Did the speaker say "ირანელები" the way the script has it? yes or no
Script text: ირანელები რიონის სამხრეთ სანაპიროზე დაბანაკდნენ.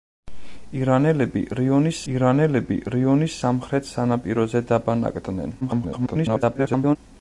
yes